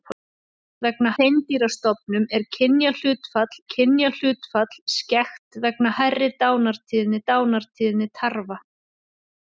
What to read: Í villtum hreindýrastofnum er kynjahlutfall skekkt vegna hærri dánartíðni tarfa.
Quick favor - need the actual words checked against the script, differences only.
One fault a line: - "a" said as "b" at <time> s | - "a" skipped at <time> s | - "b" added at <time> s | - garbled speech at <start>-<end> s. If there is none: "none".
- "villtum" said as "vegna" at 0.9 s
- "kynjahlutfall" added at 3.7 s
- "dánartíðni" added at 7.3 s